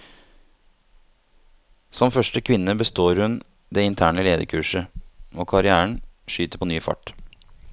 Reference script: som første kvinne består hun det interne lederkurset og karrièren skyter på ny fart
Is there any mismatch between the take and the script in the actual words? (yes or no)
no